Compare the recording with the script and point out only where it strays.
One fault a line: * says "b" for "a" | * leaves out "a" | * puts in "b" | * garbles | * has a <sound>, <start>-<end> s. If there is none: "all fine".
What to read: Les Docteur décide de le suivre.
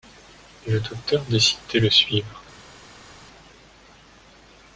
* says "Le" for "Les"